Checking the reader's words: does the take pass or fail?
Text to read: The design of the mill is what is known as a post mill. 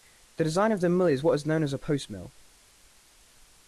pass